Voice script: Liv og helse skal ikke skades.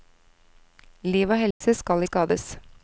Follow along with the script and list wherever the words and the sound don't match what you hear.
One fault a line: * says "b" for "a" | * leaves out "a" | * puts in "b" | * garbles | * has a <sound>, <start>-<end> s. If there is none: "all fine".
* has a dropout, 1.5-1.6 s
* leaves out "ikke"